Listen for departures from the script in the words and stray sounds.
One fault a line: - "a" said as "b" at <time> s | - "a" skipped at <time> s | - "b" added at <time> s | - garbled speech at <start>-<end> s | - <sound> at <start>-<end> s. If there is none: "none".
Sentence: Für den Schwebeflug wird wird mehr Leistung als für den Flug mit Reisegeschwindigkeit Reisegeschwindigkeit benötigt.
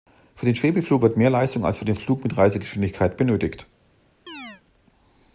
- "wird" skipped at 1.2 s
- "Reisegeschwindigkeit" skipped at 3.2 s
- chirp at 4.3-4.6 s